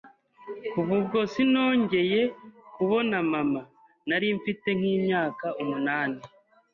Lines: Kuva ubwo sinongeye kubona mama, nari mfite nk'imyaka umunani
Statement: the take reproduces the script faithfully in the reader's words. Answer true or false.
true